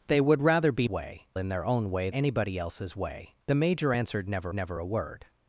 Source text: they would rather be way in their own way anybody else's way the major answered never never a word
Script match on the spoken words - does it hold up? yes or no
yes